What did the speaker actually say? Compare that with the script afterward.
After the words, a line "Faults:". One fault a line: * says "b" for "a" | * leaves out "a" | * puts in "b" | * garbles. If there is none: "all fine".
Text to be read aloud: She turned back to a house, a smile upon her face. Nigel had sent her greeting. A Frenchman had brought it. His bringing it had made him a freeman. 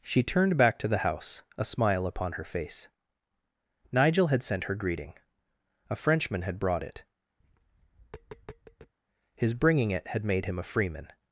She turned back to the house, a smile upon her face. Nigel had sent her greeting. A Frenchman had brought it. His bringing it had made him a freeman.
Faults:
* says "the" for "a"